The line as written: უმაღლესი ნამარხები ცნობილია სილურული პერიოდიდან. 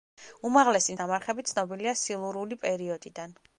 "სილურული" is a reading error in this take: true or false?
false